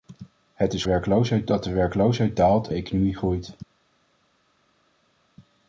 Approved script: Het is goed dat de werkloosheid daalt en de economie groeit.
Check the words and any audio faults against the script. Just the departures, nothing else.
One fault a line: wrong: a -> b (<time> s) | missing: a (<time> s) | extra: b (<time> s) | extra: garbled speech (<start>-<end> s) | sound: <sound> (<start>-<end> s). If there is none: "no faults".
wrong: goed -> werkloosheid (0.8 s)
missing: en (2.7 s)